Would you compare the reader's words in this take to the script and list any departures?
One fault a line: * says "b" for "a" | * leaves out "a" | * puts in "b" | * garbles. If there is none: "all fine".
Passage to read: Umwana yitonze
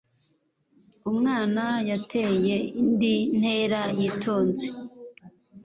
* puts in "yateye indi ntera"